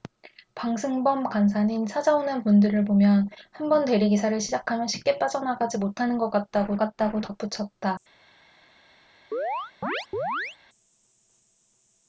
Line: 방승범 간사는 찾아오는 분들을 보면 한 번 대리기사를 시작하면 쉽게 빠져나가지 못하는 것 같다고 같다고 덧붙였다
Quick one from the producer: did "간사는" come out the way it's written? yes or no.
yes